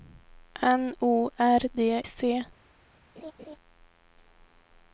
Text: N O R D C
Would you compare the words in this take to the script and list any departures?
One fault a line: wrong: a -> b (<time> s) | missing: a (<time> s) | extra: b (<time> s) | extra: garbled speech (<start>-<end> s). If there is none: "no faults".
no faults